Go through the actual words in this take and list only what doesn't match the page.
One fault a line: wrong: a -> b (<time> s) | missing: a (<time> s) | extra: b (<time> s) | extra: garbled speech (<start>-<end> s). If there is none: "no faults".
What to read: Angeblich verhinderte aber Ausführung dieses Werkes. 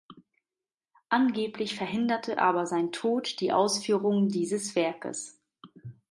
extra: sein Tod die (2.6 s)